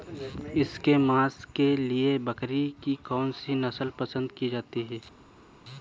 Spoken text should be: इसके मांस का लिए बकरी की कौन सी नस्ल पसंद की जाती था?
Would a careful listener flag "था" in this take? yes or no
yes